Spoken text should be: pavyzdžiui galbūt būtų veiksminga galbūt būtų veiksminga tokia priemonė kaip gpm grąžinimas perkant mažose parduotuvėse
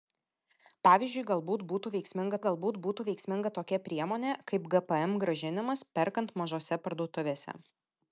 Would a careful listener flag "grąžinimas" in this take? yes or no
no